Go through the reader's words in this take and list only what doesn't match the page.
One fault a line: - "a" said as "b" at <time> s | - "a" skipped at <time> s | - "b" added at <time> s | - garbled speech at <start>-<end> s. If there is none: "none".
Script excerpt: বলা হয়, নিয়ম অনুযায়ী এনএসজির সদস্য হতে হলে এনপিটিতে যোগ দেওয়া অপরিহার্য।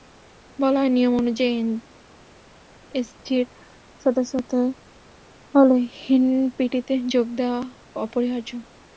none